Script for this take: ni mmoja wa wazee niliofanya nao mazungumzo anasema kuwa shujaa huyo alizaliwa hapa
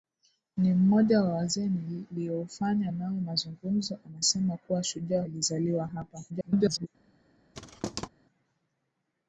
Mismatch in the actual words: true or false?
true